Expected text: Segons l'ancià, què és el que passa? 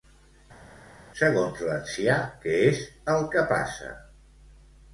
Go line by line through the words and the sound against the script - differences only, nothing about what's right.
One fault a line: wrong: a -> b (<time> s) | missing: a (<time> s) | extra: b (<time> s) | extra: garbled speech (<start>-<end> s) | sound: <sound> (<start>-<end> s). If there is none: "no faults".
no faults